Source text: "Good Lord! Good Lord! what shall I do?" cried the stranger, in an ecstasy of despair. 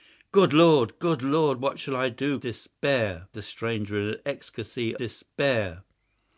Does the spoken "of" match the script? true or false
false